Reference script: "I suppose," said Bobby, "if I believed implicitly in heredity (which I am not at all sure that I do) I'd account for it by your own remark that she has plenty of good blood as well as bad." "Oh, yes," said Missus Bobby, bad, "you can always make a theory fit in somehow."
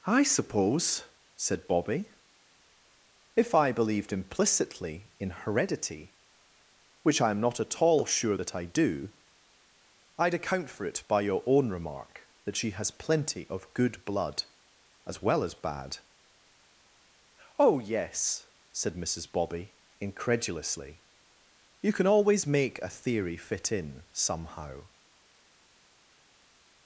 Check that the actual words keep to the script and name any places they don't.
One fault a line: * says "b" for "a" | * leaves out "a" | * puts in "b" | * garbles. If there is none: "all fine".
* says "incredulously" for "bad"